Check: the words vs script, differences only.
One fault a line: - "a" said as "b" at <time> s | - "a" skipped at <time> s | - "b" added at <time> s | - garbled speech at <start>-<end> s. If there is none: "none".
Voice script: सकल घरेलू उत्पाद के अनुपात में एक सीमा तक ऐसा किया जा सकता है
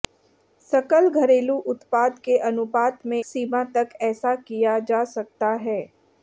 - "एक" skipped at 3.2 s